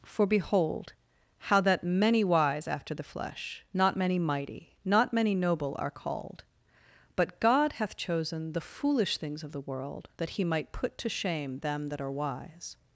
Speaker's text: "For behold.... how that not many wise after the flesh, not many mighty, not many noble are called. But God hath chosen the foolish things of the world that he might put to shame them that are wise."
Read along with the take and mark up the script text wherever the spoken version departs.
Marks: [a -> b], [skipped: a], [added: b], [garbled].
"For behold.... how that [skipped: not] many wise after the flesh, not many mighty, not many noble are called. But God hath chosen the foolish things of the world that he might put to shame them that are wise."